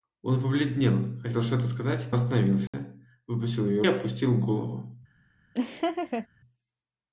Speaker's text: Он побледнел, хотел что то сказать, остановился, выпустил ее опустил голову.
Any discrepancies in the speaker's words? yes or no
no